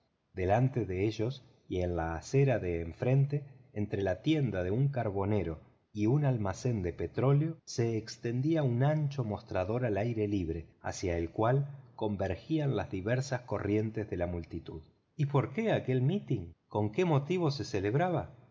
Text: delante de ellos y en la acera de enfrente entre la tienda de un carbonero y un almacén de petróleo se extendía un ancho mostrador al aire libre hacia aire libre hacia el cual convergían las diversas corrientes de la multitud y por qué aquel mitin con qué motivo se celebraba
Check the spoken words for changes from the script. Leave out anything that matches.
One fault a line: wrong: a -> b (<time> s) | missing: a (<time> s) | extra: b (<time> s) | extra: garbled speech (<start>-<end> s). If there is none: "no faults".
missing: aire libre hacia (11.2 s)